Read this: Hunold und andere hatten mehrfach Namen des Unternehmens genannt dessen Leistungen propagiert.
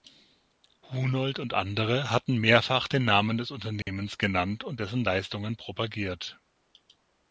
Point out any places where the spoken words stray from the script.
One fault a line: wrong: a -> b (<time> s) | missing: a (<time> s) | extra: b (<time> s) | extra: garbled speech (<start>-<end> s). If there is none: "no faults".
extra: den (2.9 s)
extra: und (4.6 s)